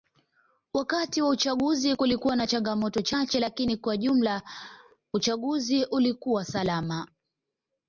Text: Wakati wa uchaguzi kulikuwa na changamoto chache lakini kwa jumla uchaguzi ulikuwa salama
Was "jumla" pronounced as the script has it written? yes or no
yes